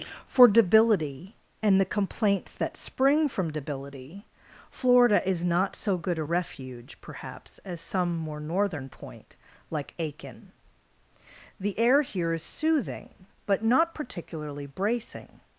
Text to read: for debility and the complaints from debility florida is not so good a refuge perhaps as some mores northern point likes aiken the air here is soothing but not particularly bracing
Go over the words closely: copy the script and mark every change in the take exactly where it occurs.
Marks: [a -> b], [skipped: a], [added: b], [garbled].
for debility and the complaints [added: that spring] from debility florida is not so good a refuge perhaps as some [mores -> more] northern point [likes -> like] aiken the air here is soothing but not particularly bracing